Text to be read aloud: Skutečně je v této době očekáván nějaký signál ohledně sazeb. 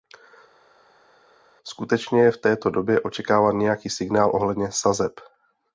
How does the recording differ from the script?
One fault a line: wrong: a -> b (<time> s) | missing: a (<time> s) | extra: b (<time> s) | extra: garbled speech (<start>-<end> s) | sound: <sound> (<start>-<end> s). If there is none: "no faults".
no faults